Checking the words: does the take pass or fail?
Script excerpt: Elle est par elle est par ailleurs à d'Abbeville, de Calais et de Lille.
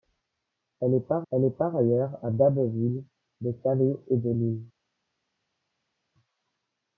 pass